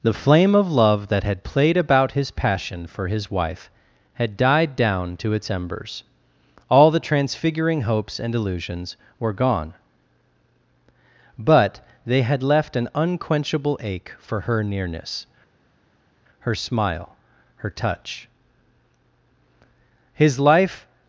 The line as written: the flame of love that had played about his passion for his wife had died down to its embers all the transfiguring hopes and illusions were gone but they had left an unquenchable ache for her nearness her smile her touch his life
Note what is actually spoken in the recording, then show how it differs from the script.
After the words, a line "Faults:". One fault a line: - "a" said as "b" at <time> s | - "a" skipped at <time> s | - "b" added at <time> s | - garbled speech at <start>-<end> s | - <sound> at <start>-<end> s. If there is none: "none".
the flame of love that had played about his passion for his wife had died down to its embers all the transfiguring hopes and illusions were gone but they had left an unquenchable ache for her nearness her smile her touch his life
Faults:
none